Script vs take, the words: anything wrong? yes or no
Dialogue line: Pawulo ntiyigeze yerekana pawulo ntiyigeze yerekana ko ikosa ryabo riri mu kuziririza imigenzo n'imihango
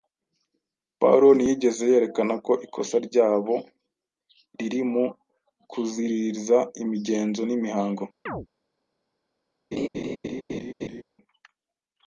yes